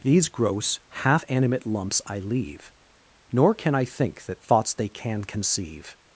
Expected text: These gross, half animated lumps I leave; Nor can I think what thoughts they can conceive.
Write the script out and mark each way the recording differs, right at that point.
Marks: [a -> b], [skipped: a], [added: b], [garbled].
These gross, half [animated -> animate] lumps I leave; Nor can I think [what -> that] thoughts they can conceive.